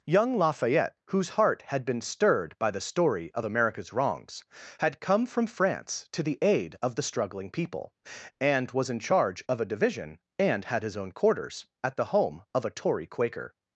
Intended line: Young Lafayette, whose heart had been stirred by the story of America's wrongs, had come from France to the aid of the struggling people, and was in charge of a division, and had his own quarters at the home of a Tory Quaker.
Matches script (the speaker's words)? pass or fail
pass